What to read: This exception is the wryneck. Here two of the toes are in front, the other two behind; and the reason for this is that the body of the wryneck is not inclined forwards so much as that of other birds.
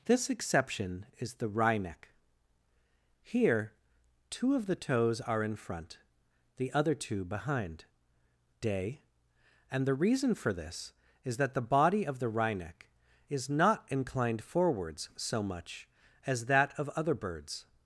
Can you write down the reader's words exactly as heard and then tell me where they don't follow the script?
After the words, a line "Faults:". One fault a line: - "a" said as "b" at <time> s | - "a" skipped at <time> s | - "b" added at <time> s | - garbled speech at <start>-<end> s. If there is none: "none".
This exception is the wryneck. Here two of the toes are in front, the other two behind; day and the reason for this is that the body of the wryneck is not inclined forwards so much as that of other birds.
Faults:
- "day" added at 8.6 s